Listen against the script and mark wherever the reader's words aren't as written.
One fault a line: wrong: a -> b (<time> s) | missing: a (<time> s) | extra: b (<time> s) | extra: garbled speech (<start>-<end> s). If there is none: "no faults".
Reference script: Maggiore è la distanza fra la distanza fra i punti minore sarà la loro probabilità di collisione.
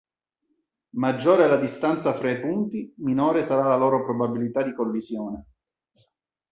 missing: la distanza fra (2.3 s)